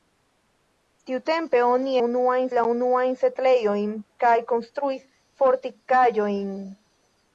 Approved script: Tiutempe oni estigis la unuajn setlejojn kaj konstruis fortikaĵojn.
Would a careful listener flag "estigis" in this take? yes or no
yes